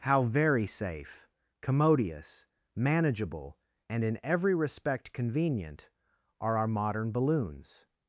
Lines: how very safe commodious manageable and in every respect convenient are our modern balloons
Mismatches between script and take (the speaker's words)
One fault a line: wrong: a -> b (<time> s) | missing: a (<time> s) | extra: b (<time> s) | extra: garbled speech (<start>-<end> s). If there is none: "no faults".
no faults